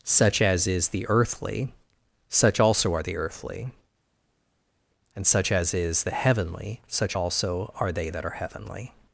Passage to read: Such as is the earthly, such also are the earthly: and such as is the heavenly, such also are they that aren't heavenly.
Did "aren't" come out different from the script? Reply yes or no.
yes